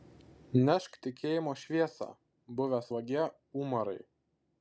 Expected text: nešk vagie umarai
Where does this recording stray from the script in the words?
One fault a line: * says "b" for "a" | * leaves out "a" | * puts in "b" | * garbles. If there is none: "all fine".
* puts in "tikėjimo šviesą buvęs"